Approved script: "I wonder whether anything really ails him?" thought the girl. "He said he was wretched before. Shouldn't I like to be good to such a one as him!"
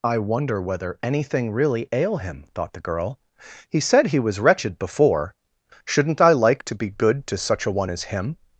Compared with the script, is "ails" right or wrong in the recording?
wrong